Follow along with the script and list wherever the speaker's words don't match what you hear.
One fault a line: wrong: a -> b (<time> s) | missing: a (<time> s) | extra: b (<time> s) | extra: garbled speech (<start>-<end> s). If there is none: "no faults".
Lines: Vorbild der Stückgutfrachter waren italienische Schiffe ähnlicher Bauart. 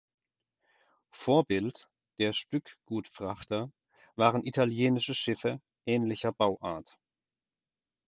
no faults